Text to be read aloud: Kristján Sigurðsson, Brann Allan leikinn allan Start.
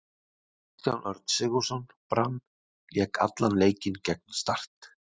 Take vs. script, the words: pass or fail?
fail